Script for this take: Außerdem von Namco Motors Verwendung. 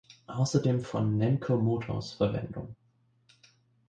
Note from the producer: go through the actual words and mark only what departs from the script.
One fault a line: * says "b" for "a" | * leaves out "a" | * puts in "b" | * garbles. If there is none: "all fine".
all fine